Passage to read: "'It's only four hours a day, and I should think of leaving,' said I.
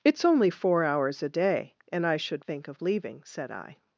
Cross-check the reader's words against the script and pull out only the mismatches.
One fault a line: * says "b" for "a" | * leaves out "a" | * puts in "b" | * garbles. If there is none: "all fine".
all fine